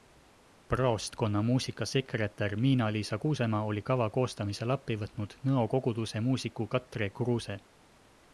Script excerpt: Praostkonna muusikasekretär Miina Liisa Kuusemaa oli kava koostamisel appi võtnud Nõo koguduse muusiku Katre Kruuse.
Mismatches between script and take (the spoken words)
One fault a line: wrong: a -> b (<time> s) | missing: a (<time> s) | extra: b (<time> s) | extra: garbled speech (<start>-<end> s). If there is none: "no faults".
no faults